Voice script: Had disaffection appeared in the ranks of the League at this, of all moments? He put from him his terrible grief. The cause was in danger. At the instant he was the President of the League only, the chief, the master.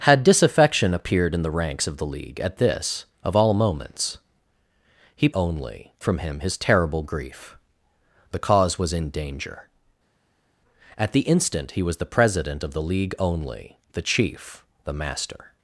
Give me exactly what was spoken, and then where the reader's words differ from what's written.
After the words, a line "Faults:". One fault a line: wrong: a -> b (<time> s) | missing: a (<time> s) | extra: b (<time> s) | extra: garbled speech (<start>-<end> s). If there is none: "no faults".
Had disaffection appeared in the ranks of the League at this, of all moments? He only from him his terrible grief. The cause was in danger. At the instant he was the President of the League only, the chief, the master.
Faults:
wrong: put -> only (5.3 s)